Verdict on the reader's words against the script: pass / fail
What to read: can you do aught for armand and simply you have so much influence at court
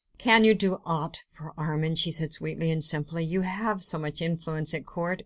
fail